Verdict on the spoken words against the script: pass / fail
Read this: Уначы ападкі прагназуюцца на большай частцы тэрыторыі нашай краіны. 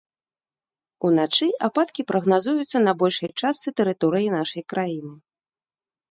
pass